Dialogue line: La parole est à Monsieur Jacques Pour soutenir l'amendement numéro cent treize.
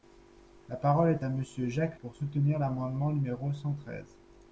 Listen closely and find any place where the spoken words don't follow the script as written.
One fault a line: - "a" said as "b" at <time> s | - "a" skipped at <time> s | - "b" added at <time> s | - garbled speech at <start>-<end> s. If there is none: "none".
none